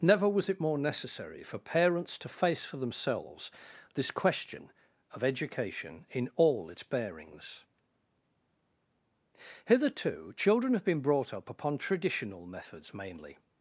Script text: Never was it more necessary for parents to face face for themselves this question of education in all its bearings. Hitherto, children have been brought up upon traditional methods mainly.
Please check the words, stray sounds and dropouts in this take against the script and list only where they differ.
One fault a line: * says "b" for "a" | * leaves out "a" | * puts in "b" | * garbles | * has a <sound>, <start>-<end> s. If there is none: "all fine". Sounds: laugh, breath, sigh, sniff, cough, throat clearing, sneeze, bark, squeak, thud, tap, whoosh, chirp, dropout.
* leaves out "face"